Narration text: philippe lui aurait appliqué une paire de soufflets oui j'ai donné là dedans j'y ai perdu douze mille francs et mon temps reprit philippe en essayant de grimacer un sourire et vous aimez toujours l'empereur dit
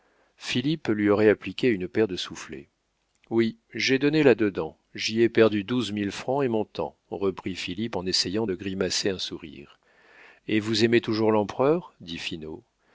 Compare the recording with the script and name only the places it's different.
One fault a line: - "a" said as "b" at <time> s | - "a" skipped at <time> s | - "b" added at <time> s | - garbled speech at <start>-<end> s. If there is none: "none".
none